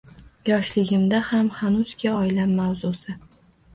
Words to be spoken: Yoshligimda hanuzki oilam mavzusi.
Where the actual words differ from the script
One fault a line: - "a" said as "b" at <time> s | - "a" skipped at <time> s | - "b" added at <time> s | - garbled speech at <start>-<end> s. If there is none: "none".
- "ham" added at 1.3 s